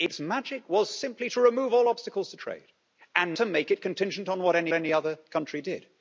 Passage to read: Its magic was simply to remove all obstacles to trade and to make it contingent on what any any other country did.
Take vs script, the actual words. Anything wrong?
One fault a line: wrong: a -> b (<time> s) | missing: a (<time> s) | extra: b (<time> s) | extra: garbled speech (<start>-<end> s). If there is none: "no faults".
no faults